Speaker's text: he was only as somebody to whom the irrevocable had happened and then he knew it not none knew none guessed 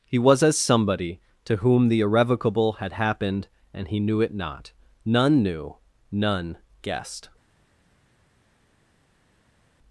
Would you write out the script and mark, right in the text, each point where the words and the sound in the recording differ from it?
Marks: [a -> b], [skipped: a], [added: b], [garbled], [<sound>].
he was [skipped: only] as somebody to whom the irrevocable had happened and [skipped: then] he knew it not none knew none guessed